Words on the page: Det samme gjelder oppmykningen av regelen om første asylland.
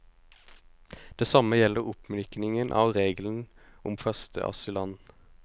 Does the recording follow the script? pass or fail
pass